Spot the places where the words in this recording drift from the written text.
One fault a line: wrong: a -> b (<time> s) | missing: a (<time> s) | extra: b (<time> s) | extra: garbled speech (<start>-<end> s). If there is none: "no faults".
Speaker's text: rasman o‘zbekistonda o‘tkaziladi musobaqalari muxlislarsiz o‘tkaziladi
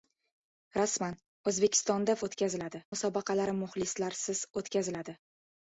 no faults